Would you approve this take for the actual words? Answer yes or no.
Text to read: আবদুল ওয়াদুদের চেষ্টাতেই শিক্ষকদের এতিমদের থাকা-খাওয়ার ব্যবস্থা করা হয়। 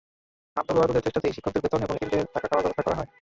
no